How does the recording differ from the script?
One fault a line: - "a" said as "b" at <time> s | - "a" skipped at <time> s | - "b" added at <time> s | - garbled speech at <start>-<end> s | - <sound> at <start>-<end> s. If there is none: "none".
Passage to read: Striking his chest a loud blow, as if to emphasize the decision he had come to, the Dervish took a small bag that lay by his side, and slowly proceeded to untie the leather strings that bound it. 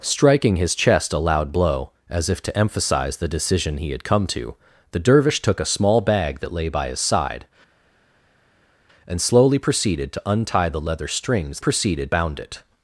- "that" said as "proceeded" at 11.6 s